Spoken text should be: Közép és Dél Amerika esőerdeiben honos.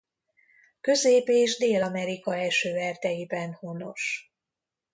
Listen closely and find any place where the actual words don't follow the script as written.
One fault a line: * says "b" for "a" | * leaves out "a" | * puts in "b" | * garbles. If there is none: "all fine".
all fine